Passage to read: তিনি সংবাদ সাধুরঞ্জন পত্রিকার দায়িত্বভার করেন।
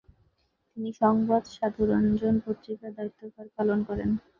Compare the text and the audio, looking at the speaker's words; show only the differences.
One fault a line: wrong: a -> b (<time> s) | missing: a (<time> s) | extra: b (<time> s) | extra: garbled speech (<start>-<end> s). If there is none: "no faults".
extra: পালন (3.6 s)